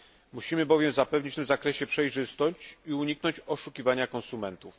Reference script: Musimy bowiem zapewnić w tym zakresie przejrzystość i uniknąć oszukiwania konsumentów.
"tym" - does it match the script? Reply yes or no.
yes